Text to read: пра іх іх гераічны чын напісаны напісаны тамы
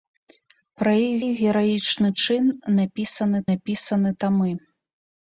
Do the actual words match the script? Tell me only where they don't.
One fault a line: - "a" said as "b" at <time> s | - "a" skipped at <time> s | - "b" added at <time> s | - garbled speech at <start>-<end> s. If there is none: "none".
none